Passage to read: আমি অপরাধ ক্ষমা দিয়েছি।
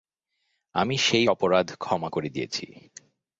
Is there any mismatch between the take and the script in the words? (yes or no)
yes